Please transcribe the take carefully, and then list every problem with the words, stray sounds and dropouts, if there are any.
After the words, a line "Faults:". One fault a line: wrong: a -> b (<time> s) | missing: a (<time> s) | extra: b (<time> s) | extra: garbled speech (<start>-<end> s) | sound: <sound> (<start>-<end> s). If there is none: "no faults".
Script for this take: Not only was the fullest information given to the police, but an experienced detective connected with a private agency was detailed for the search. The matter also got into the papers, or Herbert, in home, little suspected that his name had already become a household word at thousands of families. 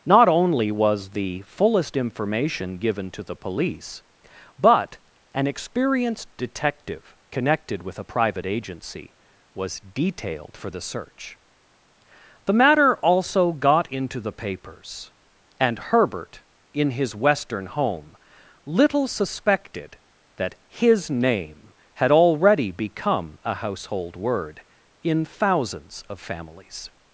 Not only was the fullest information given to the police, but an experienced detective connected with a private agency was detailed for the search. The matter also got into the papers, and Herbert, in his Western home, little suspected that his name had already become a household word in thousands of families.
Faults:
wrong: or -> and (15.6 s)
extra: his Western (16.9 s)
wrong: at -> in (25.0 s)